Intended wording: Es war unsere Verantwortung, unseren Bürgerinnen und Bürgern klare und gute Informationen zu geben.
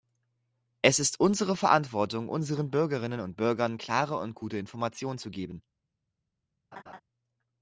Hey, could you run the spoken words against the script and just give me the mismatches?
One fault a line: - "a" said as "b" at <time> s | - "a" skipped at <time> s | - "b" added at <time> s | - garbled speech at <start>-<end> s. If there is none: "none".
- "war" said as "ist" at 1.0 s